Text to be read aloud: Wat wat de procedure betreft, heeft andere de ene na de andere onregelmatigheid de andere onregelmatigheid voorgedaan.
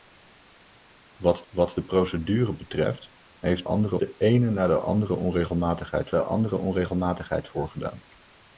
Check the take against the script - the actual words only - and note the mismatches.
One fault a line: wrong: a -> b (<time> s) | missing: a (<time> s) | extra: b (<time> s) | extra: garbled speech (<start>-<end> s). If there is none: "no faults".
no faults